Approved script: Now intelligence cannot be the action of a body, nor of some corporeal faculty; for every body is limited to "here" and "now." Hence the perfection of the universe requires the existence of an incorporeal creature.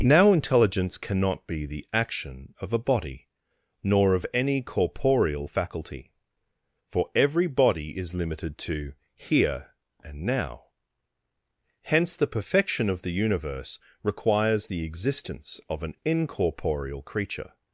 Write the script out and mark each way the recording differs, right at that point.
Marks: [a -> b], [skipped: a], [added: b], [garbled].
Now intelligence cannot be the action of a body, nor of [some -> any] corporeal faculty; for every body is limited to "here" and "now." Hence the perfection of the universe requires the existence of an incorporeal creature.